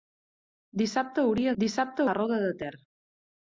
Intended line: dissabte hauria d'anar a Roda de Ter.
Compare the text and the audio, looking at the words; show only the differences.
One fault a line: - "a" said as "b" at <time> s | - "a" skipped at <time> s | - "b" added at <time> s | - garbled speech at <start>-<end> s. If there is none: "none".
- "d'anar" said as "dissabte" at 1.6 s